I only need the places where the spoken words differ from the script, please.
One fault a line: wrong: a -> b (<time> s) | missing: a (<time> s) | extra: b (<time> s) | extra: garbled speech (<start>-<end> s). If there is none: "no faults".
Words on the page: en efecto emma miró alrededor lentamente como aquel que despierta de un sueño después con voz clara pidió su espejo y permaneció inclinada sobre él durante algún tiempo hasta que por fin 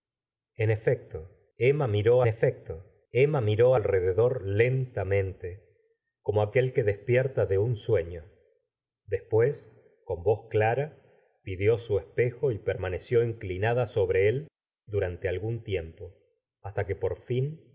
extra: efecto emma miró (2.3 s)